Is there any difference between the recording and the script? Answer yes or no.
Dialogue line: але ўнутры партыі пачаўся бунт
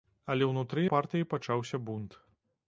no